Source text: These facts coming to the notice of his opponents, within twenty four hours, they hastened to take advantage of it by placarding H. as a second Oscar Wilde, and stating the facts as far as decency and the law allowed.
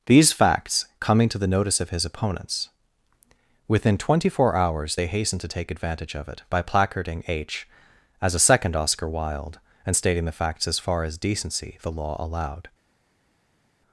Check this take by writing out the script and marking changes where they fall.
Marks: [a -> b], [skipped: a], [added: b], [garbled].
These facts coming to the notice of his opponents, within twenty four hours, they hastened to take advantage of it by placarding H. as a second Oscar Wilde, and stating the facts as far as decency [skipped: and] the law allowed.